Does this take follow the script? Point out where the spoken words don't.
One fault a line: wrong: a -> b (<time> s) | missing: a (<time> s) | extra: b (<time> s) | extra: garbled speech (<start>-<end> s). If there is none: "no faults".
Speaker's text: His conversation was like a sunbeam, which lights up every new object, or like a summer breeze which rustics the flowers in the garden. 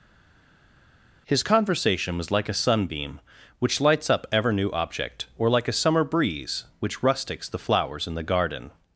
wrong: every -> ever (4.3 s)